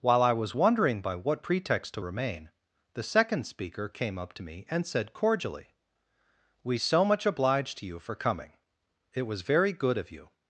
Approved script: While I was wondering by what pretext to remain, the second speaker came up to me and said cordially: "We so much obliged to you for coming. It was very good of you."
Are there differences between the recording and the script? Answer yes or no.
no